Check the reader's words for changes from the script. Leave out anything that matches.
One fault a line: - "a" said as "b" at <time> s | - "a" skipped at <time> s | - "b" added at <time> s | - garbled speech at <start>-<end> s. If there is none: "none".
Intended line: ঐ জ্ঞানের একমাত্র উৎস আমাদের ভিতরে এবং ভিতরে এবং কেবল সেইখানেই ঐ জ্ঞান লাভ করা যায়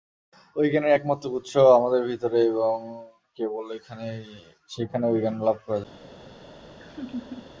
- "ভিতরে এবং" skipped at 2.8 s